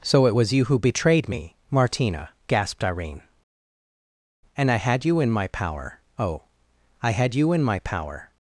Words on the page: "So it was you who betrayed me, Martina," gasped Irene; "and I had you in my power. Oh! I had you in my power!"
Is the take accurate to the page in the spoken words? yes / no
yes